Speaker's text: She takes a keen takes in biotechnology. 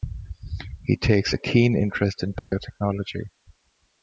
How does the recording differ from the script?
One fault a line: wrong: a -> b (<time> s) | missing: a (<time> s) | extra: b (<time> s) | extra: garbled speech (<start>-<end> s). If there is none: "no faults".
wrong: She -> He (0.8 s)
wrong: takes -> interest (1.8 s)